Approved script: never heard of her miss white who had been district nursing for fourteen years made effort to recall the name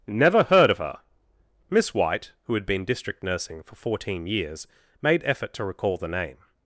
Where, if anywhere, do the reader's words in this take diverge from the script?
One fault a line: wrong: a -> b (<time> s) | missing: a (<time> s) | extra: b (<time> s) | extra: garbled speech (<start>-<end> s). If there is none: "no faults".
no faults